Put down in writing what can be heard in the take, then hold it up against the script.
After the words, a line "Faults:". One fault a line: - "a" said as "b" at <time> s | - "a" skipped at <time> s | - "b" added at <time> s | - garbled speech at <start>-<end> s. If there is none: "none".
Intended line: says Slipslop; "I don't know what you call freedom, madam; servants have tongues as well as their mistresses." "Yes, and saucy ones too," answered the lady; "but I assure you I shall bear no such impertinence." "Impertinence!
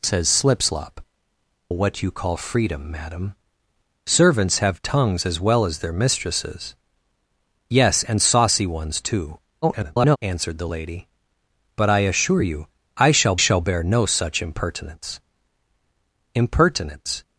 says Slipslop; "what you call freedom, madam; servants have tongues as well as their mistresses." "Yes, and saucy ones too," [garbled] answered the lady; "but I assure you I shall shall bear no such impertinence." "Impertinence!
Faults:
- "I don't know" skipped at 1.0 s
- garbled speech at 9.6-10.2 s
- "shall" added at 13.4 s